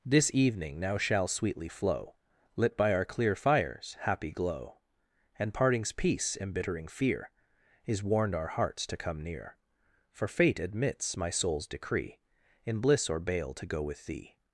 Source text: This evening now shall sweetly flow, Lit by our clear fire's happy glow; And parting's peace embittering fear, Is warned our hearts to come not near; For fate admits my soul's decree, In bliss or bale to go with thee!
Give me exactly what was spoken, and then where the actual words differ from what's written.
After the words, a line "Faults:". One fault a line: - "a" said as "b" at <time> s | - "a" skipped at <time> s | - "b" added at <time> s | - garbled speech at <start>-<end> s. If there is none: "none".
This evening now shall sweetly flow, Lit by our clear fire's happy glow; And parting's peace embittering fear, Is warned our hearts to come near; For fate admits my soul's decree, In bliss or bale to go with thee!
Faults:
- "not" skipped at 9.2 s